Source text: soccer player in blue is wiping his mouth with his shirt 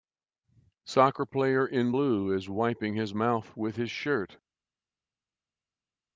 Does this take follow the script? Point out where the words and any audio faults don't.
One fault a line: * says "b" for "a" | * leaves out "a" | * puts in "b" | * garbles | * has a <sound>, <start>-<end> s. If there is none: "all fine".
all fine